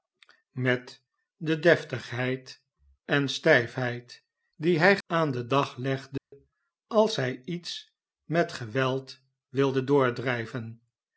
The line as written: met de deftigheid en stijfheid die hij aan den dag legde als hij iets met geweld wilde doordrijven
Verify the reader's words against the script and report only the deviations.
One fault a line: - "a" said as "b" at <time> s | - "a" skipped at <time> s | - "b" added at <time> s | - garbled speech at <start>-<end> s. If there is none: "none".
none